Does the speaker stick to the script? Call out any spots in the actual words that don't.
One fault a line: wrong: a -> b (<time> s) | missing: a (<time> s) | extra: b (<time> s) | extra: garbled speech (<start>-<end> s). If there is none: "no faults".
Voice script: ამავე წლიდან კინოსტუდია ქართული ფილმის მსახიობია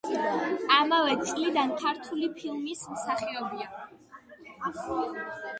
missing: კინოსტუდია (1.8 s)